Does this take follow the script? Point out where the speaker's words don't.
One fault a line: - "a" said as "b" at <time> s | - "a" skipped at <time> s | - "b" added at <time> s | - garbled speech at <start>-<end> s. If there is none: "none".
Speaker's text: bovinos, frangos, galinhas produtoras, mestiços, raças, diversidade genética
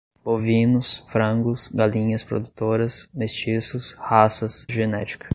- "diversidade" skipped at 4.7 s